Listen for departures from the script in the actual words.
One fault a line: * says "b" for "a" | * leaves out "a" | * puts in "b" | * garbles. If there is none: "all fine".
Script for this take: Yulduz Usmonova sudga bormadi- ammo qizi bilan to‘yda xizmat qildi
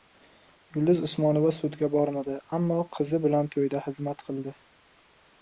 all fine